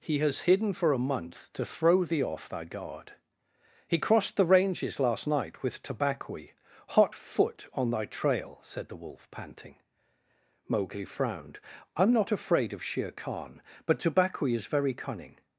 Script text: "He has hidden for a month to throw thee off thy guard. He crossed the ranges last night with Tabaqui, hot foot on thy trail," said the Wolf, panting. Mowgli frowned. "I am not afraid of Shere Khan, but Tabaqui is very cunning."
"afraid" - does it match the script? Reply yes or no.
yes